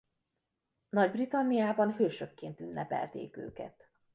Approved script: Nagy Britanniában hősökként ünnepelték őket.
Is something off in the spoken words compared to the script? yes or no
no